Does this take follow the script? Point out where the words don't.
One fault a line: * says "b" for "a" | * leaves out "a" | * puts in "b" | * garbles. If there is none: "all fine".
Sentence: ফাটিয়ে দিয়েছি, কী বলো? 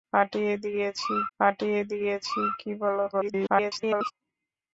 * puts in "ফাটিয়ে দিয়েছি"
* garbles